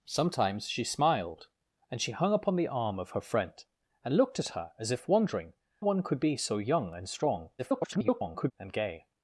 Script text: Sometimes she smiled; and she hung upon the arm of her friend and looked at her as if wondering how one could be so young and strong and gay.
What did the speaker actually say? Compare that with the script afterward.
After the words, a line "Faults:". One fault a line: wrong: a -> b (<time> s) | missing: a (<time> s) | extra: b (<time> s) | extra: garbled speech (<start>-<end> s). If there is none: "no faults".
Sometimes she smiled; and she hung upon the arm of her friend and looked at her as if wondering one could be so young and strong [garbled] and gay.
Faults:
missing: how (5.5 s)
extra: garbled speech (7.6-8.5 s)